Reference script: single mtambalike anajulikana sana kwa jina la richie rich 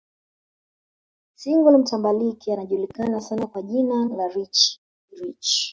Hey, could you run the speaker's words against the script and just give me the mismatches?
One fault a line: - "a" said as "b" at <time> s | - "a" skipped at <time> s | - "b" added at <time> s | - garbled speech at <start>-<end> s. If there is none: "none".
none